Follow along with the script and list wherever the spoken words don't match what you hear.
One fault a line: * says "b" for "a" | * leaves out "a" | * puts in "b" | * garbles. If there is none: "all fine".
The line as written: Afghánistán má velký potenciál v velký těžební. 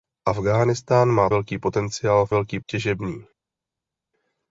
all fine